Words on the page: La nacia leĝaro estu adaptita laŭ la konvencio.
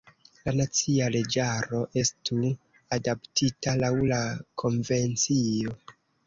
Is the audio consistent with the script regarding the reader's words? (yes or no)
yes